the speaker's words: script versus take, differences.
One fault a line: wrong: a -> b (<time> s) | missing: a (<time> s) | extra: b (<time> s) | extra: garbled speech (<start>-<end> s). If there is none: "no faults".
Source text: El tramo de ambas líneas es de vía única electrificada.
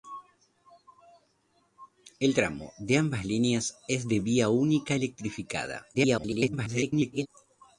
extra: garbled speech (5.9-7.3 s)